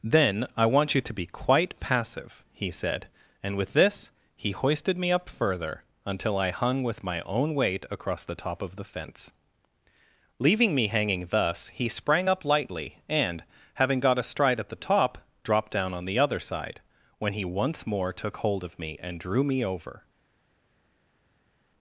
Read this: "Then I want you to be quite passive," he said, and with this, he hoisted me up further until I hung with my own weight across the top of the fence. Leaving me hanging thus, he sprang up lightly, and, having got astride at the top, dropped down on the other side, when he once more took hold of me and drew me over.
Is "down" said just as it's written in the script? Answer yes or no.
yes